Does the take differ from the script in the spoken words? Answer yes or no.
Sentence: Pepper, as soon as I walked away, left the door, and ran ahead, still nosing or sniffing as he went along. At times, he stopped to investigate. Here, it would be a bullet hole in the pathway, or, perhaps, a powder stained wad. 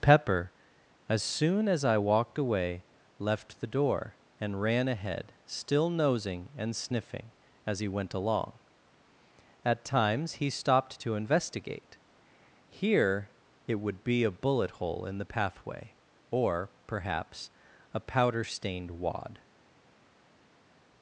yes